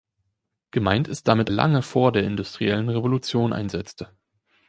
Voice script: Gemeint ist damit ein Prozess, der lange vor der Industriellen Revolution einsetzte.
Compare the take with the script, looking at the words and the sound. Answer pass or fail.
fail